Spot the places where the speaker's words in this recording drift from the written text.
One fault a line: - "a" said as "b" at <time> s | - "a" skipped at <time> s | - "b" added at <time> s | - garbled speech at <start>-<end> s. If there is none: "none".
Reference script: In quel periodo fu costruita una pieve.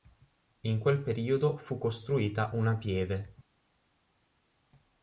none